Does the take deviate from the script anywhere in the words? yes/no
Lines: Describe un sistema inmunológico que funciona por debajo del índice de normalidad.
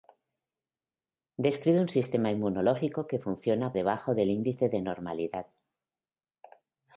yes